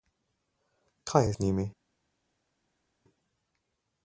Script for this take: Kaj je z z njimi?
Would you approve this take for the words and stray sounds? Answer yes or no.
no